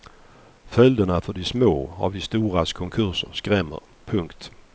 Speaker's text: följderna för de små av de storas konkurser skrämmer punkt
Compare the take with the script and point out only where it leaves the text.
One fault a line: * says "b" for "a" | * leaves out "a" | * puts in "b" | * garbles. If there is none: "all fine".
all fine